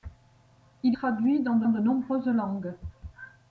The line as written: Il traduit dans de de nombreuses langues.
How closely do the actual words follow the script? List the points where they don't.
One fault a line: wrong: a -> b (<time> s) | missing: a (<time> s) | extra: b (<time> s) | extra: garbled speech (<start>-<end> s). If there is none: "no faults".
no faults